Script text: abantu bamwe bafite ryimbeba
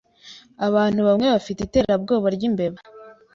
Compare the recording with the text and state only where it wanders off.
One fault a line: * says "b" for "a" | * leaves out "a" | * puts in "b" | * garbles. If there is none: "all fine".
* puts in "iterabwoba"